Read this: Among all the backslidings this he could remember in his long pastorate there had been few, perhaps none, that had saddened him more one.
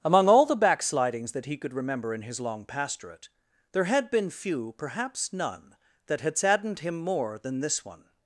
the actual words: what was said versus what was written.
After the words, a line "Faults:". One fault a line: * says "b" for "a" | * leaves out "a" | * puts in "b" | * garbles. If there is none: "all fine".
Among all the backslidings that he could remember in his long pastorate there had been few, perhaps none, that had saddened him more than this one.
Faults:
* says "that" for "this"
* puts in "than this"